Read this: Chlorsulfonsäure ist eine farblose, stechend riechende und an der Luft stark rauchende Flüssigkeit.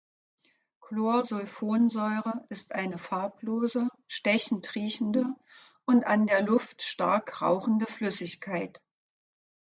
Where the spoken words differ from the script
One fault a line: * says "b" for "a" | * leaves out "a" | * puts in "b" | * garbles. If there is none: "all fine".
all fine